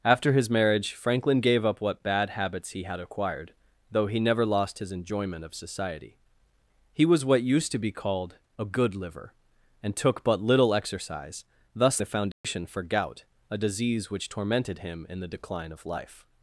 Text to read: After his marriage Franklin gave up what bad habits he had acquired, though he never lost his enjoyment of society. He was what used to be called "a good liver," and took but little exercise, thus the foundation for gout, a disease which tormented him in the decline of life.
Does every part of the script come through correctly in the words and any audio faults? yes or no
no